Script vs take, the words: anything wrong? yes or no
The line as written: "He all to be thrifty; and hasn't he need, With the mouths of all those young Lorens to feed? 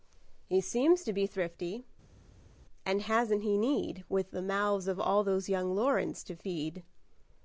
yes